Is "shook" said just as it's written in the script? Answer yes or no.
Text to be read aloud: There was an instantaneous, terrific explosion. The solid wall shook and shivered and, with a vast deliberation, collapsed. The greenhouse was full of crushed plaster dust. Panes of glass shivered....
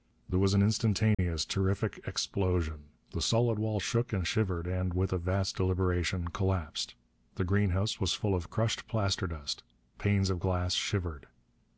yes